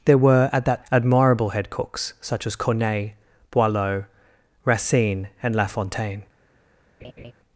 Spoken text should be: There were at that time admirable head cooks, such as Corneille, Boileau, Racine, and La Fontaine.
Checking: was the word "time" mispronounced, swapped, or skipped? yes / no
yes